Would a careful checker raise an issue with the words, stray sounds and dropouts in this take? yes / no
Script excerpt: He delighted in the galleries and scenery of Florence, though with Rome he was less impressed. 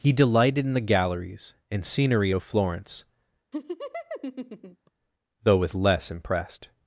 yes